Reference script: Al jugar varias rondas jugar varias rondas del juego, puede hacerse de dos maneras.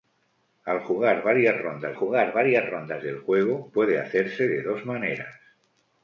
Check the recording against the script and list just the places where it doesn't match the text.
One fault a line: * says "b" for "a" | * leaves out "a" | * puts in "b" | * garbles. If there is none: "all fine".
all fine